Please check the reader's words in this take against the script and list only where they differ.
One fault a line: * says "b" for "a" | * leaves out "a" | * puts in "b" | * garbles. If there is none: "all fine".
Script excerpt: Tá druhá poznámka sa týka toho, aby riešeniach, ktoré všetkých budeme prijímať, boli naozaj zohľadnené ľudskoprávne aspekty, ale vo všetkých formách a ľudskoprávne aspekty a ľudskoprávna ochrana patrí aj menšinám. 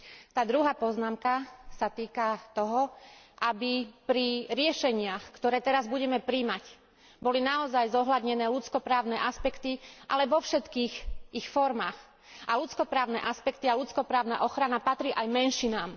* puts in "pri"
* says "teraz" for "všetkých"
* puts in "ich"